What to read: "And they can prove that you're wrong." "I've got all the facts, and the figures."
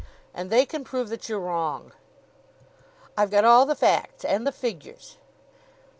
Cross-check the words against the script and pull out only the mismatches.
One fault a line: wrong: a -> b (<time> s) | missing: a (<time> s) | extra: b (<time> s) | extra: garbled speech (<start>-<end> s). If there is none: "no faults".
no faults